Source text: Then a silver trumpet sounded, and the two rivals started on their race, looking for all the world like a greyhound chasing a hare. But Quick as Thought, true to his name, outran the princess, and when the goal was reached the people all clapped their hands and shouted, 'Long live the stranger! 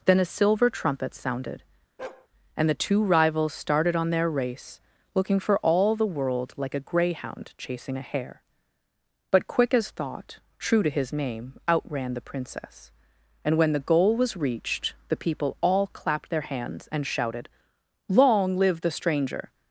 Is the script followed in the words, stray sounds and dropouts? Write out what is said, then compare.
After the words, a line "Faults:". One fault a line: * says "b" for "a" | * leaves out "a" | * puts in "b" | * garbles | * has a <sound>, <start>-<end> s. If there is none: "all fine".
Then a silver trumpet sounded, and the two rivals started on their race, looking for all the world like a greyhound chasing a hare. But Quick as Thought, true to his name, outran the princess, and when the goal was reached the people all clapped their hands and shouted, 'Long live the stranger!
Faults:
* has a bark, 2.0-2.3 s